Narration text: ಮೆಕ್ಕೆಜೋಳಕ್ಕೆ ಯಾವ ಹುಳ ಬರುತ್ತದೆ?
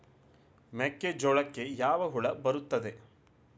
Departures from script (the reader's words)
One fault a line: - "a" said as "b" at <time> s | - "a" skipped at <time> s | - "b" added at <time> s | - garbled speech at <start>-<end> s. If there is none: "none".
none